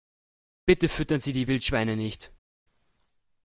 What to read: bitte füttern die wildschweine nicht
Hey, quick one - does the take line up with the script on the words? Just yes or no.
no